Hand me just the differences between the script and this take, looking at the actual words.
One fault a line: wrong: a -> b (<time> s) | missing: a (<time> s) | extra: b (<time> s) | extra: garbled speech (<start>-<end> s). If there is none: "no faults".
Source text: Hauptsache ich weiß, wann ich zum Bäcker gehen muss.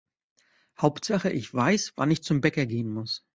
no faults